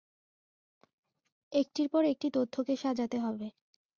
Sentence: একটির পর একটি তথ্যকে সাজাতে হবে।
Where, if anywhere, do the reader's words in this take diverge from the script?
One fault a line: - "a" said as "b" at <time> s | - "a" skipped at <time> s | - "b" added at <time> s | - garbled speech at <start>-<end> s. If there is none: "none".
none